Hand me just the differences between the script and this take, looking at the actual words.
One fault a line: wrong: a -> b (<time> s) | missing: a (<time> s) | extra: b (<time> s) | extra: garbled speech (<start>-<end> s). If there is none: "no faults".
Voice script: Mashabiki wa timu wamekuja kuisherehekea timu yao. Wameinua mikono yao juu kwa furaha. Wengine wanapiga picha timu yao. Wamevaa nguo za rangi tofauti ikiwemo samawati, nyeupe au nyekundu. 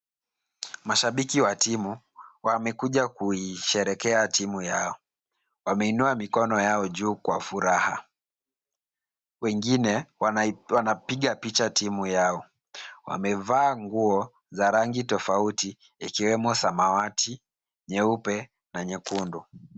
wrong: au -> na (18.7 s)